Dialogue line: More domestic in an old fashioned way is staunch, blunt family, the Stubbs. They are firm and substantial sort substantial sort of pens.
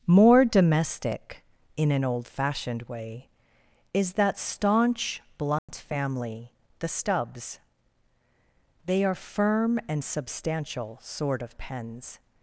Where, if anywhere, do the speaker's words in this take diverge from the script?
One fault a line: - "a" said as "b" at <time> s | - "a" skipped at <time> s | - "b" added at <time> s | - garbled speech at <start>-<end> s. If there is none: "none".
- "that" added at 4.1 s
- "substantial sort" skipped at 11.4 s